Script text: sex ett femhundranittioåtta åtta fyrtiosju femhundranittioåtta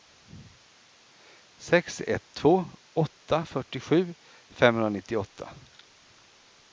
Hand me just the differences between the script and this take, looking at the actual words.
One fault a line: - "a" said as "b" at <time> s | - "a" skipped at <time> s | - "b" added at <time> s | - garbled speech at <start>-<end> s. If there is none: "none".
- "femhundranittioåtta" said as "två" at 2.3 s